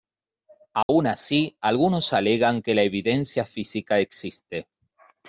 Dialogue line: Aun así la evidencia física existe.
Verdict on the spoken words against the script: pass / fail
fail